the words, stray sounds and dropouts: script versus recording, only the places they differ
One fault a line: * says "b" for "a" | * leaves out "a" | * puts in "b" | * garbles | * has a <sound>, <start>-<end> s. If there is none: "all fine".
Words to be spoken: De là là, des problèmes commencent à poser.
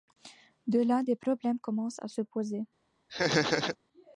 * leaves out "là"
* puts in "se"
* has a laugh, 3.1-3.8 s